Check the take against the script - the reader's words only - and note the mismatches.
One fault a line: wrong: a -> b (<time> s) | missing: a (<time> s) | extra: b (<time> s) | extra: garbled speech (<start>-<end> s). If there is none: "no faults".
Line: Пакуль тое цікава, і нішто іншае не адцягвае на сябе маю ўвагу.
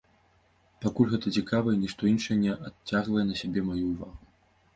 wrong: тое -> гэта (1.1 s)